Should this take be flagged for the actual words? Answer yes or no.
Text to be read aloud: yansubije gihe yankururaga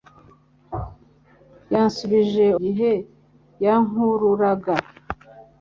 no